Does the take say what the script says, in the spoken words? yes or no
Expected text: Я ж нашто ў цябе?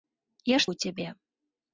no